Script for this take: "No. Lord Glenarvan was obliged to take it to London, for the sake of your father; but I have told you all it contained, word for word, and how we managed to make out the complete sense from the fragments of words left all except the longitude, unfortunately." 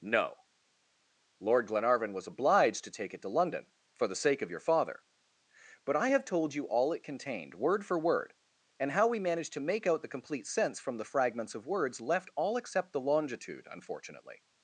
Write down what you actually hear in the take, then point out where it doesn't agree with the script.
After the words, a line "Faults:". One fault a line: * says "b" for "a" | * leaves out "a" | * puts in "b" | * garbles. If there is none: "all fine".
"No. Lord Glenarvan was obliged to take it to London, for the sake of your father; but I have told you all it contained, word for word, and how we managed to make out the complete sense from the fragments of words left all except the longitude, unfortunately."
Faults:
all fine